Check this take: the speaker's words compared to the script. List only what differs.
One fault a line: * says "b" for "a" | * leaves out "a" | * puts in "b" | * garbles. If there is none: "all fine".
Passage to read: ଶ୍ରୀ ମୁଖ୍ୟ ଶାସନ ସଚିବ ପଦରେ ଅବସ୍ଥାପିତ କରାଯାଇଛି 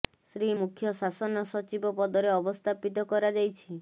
all fine